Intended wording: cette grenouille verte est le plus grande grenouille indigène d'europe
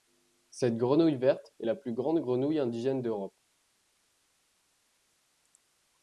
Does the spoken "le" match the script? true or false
false